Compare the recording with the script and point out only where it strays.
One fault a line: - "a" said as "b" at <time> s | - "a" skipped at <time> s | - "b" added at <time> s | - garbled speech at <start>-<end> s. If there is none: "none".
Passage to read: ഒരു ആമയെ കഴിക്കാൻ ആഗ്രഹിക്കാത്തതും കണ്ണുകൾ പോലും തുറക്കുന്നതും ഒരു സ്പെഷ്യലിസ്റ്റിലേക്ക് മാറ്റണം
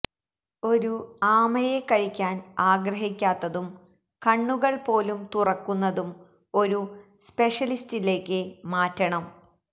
none